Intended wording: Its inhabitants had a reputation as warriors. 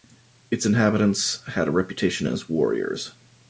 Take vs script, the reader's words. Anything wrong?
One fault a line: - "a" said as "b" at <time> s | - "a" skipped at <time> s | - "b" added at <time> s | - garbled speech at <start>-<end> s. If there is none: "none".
none